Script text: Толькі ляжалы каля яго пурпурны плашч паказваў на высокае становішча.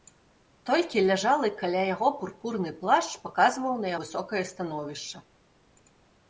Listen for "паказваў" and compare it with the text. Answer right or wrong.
right